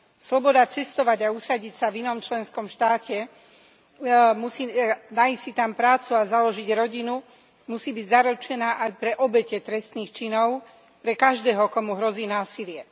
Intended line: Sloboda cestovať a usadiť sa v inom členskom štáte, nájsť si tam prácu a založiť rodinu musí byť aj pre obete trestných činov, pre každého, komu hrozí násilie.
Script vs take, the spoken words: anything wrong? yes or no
yes